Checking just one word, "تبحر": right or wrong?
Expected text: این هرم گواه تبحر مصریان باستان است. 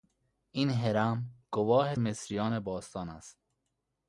wrong